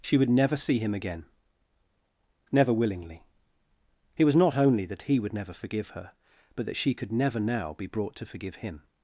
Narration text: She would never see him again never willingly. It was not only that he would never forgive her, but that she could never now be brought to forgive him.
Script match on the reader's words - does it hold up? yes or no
yes